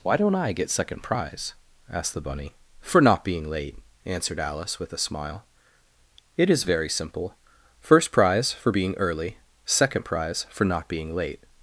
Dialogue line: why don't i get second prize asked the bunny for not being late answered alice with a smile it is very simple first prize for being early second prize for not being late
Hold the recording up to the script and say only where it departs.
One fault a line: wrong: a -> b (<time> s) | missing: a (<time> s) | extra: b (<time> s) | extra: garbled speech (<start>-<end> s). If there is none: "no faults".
no faults